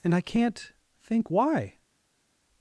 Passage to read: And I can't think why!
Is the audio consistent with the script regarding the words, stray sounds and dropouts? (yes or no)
yes